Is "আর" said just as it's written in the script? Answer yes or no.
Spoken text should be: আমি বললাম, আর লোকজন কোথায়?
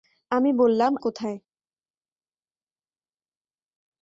no